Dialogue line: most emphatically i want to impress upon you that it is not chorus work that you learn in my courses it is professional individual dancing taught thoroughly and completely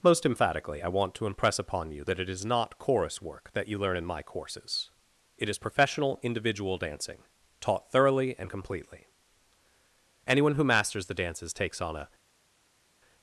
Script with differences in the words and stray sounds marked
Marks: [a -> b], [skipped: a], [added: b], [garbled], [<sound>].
most emphatically i want to impress upon you that it is not chorus work that you learn in my courses it is professional individual dancing taught thoroughly and completely [added: anyone who masters the dances takes on a]